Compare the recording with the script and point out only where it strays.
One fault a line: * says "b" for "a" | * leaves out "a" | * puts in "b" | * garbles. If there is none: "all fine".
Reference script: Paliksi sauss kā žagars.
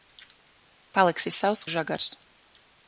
* leaves out "kā"